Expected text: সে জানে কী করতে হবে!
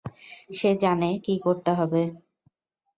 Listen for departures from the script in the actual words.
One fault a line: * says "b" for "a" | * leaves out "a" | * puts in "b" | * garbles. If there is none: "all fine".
all fine